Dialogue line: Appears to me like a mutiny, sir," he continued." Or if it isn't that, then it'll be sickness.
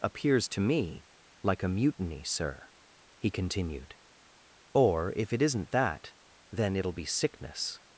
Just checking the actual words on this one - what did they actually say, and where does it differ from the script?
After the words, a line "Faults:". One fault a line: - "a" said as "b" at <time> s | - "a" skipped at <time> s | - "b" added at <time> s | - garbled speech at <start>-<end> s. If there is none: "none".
Appears to me like a mutiny, sir," he continued." Or if it isn't that, then it'll be sickness.
Faults:
none